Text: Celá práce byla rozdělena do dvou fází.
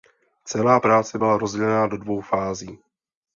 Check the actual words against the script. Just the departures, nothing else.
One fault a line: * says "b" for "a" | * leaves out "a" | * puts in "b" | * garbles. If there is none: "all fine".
all fine